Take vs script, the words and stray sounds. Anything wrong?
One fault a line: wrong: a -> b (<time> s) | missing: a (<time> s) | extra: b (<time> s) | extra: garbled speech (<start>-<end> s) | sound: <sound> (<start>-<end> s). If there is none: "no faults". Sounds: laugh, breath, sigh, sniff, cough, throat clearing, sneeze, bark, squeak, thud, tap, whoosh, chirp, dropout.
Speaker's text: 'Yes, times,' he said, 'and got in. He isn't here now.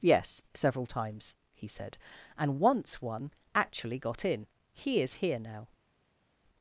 extra: several (0.6 s)
extra: once one actually (2.6 s)
wrong: isn't -> is (5.0 s)